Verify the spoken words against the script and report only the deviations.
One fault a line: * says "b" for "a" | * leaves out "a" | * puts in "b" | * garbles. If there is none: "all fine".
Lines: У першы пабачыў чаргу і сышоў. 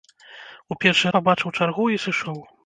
all fine